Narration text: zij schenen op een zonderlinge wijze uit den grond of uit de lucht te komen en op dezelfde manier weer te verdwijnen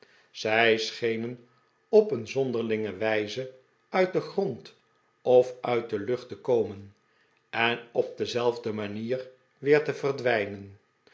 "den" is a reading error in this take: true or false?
false